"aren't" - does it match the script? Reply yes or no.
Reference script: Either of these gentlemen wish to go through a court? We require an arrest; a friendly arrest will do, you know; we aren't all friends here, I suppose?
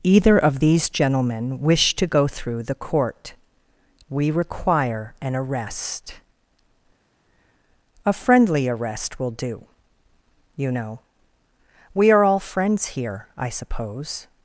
no